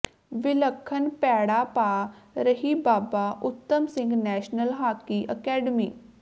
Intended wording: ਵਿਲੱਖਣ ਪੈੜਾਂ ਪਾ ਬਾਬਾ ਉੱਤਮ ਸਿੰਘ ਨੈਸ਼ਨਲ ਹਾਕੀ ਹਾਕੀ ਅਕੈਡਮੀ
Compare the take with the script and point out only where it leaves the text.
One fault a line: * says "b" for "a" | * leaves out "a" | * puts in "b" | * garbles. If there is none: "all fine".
* puts in "ਰਹੀ"
* leaves out "ਹਾਕੀ"